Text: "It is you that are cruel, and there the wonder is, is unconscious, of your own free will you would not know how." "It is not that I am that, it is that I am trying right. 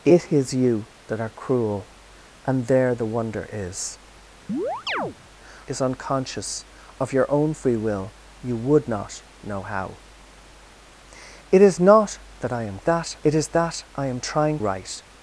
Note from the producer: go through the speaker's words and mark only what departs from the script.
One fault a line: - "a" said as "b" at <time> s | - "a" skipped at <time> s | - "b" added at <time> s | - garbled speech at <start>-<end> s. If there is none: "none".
none